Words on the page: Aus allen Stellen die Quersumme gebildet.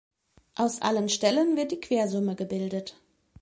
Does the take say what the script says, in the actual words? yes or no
no